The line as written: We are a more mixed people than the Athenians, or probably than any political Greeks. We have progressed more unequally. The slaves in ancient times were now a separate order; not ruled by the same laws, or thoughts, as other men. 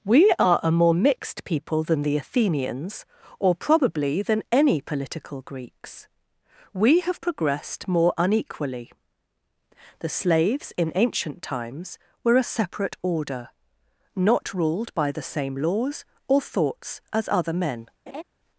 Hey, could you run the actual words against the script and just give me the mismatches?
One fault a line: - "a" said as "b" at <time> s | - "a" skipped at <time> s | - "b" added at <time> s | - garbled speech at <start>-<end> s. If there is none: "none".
- "now" skipped at 12.3 s